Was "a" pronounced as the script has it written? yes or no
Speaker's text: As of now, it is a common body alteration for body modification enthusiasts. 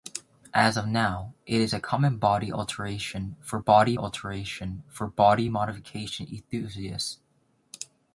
yes